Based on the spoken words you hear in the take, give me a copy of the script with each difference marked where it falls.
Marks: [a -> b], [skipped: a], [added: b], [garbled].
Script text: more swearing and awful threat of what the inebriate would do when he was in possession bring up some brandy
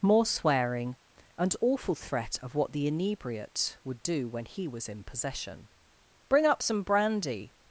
more swearing and awful threat of what the inebriate would do when he was in possession bring up some brandy